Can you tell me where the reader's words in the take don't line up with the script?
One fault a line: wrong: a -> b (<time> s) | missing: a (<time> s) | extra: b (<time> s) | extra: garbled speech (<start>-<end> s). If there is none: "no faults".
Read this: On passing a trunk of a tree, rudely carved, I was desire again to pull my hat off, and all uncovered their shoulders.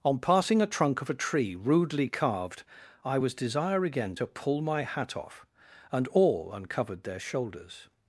no faults